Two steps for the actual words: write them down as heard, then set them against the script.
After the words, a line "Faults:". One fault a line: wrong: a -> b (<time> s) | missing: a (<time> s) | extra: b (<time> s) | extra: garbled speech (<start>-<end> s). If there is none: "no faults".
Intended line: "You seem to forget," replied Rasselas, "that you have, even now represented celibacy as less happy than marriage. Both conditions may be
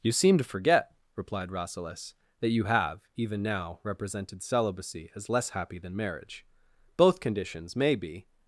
"You seem to forget," replied Rasselas, "that you have, even now represented celibacy as less happy than marriage. Both conditions may be
Faults:
no faults